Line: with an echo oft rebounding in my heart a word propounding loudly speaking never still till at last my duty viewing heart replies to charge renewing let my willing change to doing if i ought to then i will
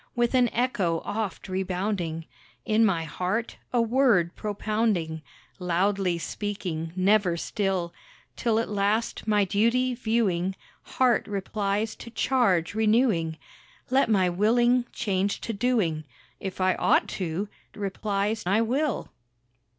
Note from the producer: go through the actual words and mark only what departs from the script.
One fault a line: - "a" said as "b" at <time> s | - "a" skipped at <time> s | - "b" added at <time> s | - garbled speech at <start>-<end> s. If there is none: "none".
- "then" said as "replies" at 17.8 s